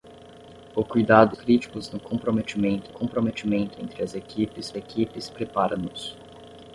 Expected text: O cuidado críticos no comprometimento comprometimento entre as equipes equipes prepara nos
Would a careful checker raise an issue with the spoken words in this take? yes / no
no